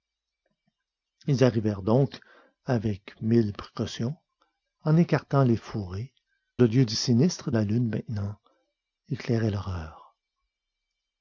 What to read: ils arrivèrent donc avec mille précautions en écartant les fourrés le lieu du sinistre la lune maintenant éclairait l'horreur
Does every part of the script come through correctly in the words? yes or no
yes